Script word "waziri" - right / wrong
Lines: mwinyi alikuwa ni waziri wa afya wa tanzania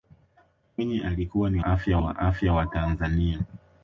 wrong